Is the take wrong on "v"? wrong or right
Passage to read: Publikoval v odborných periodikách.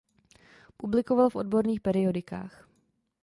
right